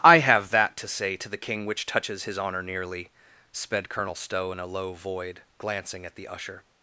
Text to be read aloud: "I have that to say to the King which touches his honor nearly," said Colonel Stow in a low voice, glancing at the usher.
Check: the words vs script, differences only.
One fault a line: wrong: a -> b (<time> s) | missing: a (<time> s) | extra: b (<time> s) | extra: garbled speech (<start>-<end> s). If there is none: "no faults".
wrong: said -> sped (3.5 s)
wrong: voice -> void (4.9 s)